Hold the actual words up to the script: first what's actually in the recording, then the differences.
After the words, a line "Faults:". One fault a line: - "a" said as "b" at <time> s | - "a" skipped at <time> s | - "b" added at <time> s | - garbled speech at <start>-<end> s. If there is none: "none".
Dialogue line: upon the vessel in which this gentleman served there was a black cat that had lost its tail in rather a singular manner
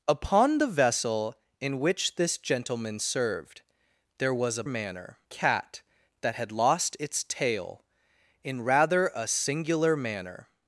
upon the vessel in which this gentleman served there was a manner cat that had lost its tail in rather a singular manner
Faults:
- "black" said as "manner" at 4.7 s